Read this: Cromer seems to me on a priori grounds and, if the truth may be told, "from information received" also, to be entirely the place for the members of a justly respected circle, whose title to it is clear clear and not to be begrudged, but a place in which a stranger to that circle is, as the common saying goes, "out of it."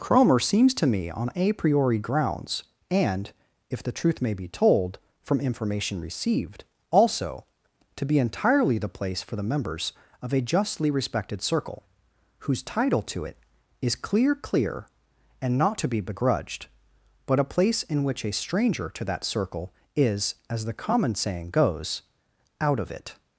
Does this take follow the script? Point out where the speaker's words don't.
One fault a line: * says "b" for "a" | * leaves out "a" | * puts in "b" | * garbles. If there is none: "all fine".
all fine